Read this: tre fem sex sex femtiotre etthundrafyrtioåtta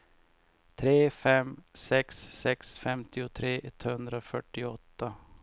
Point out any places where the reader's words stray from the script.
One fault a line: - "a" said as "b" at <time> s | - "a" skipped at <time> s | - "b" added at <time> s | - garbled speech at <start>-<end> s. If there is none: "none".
none